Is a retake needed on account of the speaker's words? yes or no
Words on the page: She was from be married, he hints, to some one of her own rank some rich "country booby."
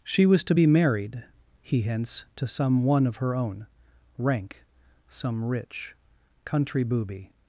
yes